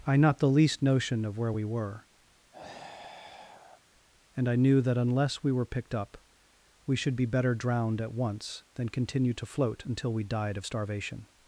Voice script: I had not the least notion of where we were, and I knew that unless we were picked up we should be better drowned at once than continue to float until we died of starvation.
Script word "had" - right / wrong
wrong